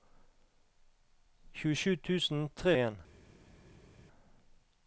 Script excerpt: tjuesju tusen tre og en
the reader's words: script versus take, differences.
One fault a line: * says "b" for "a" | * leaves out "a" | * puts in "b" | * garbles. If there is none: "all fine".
all fine